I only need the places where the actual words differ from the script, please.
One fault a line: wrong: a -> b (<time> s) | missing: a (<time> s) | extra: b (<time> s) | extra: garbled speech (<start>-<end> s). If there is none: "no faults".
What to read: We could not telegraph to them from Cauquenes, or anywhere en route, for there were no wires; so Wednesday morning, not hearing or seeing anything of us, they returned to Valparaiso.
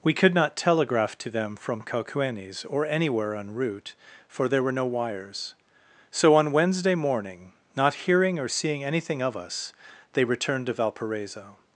extra: on (6.3 s)